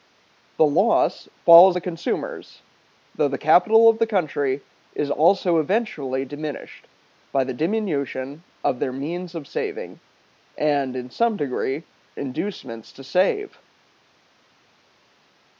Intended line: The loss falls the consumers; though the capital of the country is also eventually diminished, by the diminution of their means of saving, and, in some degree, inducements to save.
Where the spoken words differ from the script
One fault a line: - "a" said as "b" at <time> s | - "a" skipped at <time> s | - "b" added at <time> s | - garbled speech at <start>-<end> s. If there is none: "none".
none